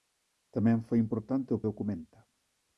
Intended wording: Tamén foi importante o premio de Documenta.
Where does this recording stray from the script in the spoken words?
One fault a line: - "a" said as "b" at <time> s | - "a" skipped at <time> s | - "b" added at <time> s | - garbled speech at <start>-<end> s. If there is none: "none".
- "premio de" skipped at 1.6 s